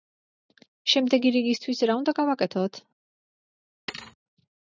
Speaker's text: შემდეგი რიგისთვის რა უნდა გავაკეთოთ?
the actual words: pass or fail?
pass